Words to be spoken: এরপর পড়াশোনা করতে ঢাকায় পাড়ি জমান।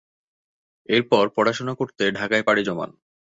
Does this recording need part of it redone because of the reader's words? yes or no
no